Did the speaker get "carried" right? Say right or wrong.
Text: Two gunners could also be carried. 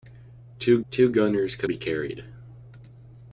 right